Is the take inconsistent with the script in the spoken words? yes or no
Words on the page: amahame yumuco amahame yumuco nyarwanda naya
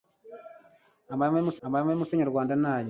no